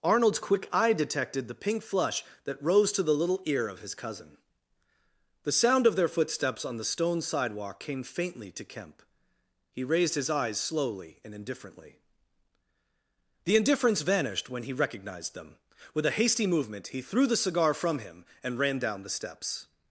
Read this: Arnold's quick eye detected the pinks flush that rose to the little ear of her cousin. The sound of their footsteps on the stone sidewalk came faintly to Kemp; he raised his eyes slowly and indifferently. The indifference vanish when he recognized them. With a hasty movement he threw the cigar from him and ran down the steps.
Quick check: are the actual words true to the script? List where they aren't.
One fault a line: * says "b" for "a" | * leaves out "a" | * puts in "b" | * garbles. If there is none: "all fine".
* says "pink" for "pinks"
* says "his" for "her"
* says "vanished" for "vanish"